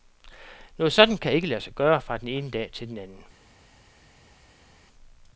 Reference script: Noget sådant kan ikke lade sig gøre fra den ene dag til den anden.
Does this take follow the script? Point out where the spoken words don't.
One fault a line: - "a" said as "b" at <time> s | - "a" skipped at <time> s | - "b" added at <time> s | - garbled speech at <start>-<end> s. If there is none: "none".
none